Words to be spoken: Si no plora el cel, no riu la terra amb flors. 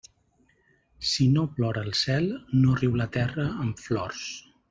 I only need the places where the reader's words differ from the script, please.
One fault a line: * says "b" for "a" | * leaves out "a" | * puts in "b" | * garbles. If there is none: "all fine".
all fine